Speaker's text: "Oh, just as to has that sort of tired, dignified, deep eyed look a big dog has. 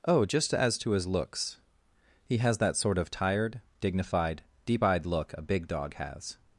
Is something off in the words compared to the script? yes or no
yes